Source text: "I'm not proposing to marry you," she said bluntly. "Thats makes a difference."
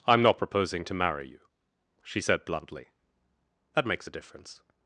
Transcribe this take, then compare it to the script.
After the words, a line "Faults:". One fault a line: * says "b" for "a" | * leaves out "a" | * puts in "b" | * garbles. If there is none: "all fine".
"I'm not proposing to marry you," she said bluntly. "That makes a difference."
Faults:
* says "That" for "Thats"